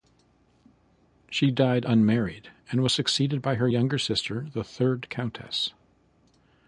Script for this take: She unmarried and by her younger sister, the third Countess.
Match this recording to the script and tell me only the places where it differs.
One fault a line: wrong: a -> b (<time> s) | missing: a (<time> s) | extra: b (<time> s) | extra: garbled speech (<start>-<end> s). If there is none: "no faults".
extra: died (1.5 s)
extra: was succeeded (2.8 s)